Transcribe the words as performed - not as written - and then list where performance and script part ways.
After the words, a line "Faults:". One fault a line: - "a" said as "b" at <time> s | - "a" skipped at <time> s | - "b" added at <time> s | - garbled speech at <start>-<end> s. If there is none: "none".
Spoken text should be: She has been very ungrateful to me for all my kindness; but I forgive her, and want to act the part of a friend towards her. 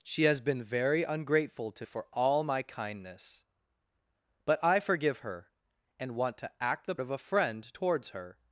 She has been very ungrateful to for all my kindness; but I forgive her, and want to act the of a friend towards her.
Faults:
- "me" skipped at 1.9 s
- "part" skipped at 7.0 s